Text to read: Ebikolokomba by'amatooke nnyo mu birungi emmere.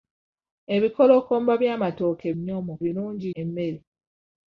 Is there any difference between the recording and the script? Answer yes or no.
no